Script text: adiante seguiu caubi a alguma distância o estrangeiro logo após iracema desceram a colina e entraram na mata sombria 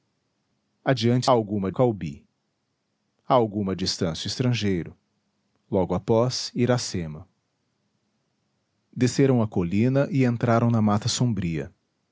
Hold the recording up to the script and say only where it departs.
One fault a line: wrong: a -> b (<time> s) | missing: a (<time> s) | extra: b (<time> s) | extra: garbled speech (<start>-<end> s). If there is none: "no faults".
wrong: seguiu -> alguma (1.3 s)